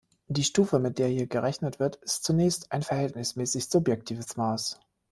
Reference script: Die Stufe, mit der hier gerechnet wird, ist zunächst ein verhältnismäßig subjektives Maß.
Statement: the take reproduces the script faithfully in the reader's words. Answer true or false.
true